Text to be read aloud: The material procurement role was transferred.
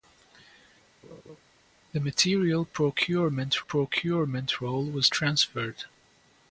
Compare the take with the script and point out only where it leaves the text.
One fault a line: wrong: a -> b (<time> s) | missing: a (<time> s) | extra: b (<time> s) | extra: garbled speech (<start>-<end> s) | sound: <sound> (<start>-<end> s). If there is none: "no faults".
sound: laugh (1.0-1.4 s)
extra: procurement (3.6 s)